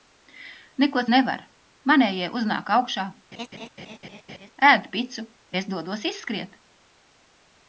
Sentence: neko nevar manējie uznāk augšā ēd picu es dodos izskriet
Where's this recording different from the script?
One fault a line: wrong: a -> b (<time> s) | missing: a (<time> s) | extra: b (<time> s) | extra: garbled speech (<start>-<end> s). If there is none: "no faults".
no faults